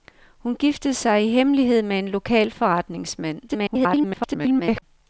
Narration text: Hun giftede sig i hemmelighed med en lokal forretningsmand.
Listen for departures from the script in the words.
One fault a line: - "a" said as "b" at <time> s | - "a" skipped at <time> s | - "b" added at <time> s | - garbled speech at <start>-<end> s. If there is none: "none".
- garbled speech at 3.5-4.8 s